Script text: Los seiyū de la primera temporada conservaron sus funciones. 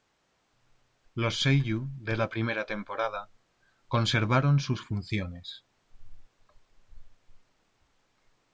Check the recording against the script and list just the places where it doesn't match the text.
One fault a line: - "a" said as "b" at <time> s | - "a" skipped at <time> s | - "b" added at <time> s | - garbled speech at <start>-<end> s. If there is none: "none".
none